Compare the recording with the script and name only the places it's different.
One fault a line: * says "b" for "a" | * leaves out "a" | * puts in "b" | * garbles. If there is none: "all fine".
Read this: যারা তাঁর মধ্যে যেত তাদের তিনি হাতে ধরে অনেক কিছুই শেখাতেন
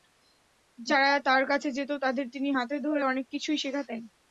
* says "কাছে" for "মধ্যে"